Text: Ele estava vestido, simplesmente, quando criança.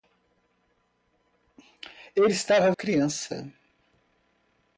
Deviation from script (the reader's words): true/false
true